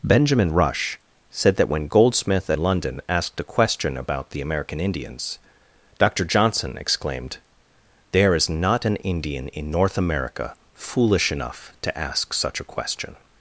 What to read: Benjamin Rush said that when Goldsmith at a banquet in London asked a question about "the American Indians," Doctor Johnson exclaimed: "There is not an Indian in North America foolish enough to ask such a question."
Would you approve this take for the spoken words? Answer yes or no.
no